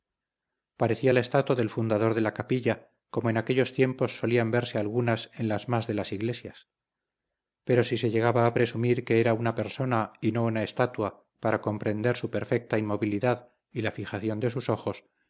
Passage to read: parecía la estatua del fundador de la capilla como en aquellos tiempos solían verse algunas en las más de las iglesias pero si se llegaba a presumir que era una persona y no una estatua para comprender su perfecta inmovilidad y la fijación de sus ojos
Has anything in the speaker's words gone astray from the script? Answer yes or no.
no